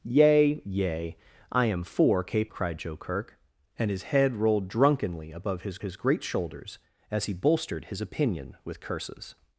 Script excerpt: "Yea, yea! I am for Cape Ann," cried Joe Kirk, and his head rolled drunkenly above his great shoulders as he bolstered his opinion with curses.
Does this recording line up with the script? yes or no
no